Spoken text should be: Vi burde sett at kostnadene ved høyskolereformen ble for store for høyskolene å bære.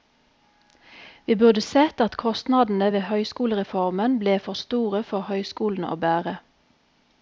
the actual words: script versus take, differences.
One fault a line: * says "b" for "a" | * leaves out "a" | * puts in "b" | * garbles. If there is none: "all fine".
all fine